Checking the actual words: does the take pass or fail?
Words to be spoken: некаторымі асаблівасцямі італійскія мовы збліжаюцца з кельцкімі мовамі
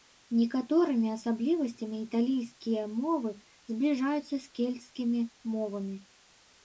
pass